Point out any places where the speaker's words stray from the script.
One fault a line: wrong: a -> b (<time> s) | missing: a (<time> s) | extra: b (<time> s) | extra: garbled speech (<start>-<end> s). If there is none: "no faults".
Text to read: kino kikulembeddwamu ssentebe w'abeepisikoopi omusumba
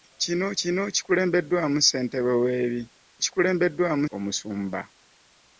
extra: kino (0.6 s)
wrong: w'abeepisikoopi -> kikulembeddwamu (3.2 s)